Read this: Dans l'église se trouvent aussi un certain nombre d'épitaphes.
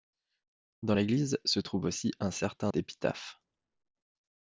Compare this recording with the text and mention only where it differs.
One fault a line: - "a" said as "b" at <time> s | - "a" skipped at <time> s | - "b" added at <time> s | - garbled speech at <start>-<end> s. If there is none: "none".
- "nombre" skipped at 2.7 s